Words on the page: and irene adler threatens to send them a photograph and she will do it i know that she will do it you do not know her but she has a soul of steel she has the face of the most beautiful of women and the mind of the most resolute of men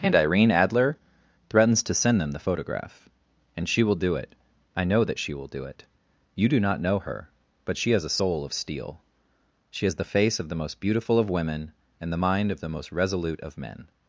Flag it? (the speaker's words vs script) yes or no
yes